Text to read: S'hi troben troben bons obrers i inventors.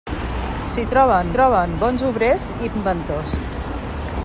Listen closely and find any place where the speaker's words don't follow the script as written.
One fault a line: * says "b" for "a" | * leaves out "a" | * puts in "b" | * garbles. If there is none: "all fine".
all fine